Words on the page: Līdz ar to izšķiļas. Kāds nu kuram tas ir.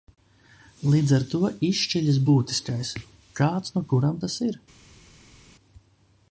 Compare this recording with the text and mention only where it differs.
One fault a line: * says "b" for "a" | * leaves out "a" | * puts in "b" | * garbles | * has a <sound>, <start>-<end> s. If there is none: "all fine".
* puts in "būtiskais"